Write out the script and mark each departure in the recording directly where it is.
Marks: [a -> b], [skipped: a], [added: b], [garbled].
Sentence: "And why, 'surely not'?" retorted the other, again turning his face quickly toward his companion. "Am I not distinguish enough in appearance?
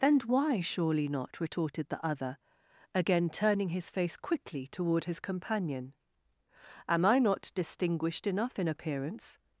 "And why, 'surely not'?" retorted the other, again turning his face quickly toward his companion. "Am I not [distinguish -> distinguished] enough in appearance?